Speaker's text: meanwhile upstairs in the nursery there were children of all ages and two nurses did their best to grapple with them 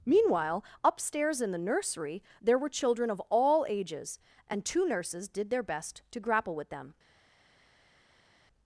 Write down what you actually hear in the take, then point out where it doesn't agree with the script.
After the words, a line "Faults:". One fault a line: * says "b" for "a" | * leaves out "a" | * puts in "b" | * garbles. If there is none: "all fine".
meanwhile upstairs in the nursery there were children of all ages and two nurses did their best to grapple with them
Faults:
all fine